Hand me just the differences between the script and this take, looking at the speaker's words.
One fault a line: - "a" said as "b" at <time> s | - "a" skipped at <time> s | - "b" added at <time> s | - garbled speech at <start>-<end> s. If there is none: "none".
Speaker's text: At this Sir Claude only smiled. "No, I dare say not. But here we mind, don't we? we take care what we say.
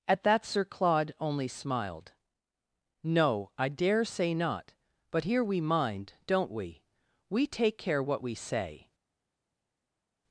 - "this" said as "that" at 0.2 s